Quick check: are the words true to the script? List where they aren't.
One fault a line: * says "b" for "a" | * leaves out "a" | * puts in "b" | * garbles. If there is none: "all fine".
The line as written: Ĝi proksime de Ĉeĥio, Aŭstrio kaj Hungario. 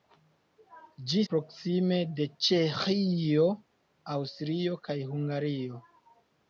all fine